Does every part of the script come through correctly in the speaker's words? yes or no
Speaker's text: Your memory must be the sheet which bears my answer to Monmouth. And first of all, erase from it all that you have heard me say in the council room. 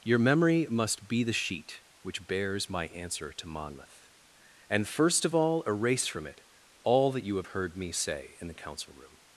yes